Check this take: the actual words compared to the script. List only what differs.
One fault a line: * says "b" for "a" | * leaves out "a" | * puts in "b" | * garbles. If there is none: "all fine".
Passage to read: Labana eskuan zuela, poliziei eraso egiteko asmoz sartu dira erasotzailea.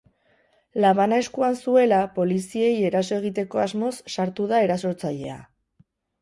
* says "da" for "dira"